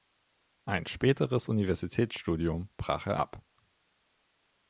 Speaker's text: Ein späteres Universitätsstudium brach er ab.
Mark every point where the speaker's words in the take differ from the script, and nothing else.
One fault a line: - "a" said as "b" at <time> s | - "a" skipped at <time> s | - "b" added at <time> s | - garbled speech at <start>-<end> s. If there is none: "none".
none